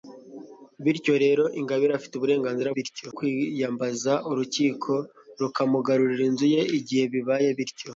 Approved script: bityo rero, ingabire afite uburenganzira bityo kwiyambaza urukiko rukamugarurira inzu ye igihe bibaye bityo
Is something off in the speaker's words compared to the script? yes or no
no